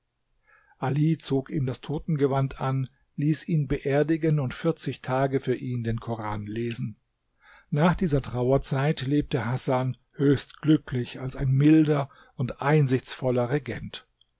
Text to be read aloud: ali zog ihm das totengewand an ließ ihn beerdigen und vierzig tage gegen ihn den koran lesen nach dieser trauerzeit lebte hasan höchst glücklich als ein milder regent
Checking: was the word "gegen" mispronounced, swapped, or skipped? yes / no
yes